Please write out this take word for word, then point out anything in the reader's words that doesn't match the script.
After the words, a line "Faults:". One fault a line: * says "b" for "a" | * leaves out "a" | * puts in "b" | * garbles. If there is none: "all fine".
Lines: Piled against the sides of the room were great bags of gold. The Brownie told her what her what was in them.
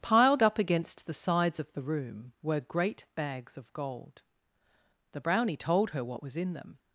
Piled up against the sides of the room were great bags of gold. The Brownie told her what was in them.
Faults:
* puts in "up"
* leaves out "her what"